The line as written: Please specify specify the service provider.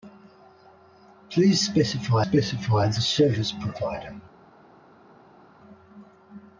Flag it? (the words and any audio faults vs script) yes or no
no